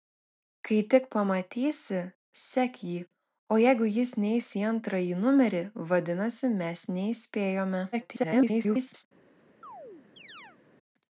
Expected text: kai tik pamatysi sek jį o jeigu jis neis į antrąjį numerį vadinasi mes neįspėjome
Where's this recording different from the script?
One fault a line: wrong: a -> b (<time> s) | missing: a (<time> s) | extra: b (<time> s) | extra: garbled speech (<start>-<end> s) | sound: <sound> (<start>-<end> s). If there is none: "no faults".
extra: garbled speech (7.9-9.0 s)
sound: chirp (9.6-10.6 s)